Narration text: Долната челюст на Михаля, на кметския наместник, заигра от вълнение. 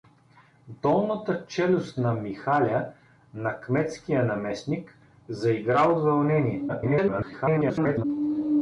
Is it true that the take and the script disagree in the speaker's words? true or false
true